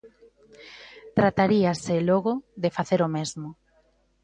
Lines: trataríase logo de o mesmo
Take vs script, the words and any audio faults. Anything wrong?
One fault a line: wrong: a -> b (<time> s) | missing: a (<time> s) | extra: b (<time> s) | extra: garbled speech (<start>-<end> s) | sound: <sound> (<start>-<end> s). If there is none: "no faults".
extra: facer (2.8 s)